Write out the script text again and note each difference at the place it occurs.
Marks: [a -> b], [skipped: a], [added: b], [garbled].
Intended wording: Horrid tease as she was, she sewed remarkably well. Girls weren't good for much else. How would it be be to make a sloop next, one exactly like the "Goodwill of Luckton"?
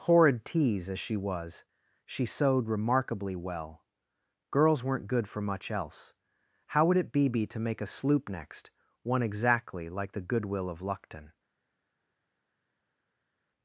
Horrid tease as she was, she sewed remarkably well. Girls weren't good for much else. How would it be be to make a sloop next, one exactly like the "Goodwill of Luckton"?